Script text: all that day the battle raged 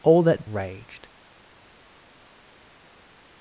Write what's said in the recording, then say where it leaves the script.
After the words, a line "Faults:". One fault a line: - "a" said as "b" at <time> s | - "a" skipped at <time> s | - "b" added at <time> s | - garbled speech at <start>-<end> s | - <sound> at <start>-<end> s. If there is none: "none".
all that raged
Faults:
- "day the battle" skipped at 0.5 s